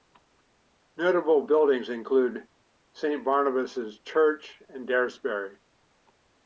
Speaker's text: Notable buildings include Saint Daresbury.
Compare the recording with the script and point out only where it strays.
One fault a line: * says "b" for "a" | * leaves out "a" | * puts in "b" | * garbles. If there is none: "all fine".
* puts in "Barnabas Church and"